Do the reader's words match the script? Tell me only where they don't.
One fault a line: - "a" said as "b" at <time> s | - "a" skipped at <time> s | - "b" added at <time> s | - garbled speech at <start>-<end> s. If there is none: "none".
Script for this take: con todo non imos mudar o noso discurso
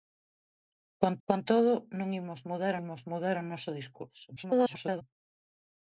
- "con" added at 1.3 s
- "imos mudar" added at 2.8 s
- garbled speech at 4.4-5.0 s